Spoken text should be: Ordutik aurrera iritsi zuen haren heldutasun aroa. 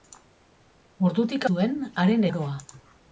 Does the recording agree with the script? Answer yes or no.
no